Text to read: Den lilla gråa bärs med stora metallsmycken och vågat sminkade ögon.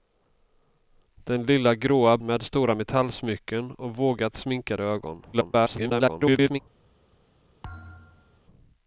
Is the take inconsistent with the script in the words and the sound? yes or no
yes